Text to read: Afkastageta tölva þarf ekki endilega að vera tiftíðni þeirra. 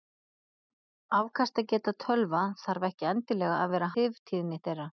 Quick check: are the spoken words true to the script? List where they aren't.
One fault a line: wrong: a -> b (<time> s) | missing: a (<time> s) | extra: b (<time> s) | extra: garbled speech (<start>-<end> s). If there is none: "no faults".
no faults